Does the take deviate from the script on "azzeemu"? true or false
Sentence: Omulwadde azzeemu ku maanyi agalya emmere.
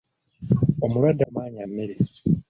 true